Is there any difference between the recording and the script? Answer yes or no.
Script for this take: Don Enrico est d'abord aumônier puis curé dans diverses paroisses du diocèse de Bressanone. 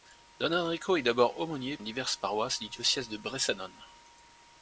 yes